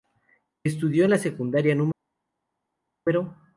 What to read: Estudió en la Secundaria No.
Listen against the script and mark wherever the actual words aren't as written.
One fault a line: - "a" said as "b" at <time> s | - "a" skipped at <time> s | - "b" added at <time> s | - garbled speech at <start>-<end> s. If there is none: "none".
none